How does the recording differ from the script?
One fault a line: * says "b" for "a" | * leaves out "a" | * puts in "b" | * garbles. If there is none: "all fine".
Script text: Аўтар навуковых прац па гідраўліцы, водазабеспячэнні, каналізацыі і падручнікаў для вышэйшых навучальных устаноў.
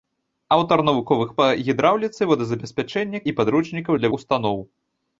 * leaves out "прац"
* leaves out "каналізацыі"
* leaves out "вышэйшых навучальных"